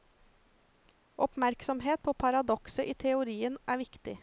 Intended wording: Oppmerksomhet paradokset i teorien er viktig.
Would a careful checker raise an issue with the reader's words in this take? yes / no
yes